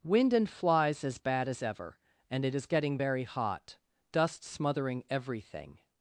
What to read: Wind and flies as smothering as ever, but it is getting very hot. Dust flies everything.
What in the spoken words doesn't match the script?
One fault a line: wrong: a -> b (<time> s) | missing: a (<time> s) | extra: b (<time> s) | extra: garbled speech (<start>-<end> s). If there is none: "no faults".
wrong: smothering -> bad (1.2 s)
wrong: but -> and (2.3 s)
wrong: flies -> smothering (4.4 s)